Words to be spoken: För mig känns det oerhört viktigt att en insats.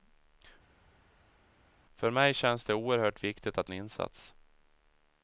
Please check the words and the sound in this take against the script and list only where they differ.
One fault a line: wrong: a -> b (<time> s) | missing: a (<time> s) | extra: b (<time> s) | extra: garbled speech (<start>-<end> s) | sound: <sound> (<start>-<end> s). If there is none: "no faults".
no faults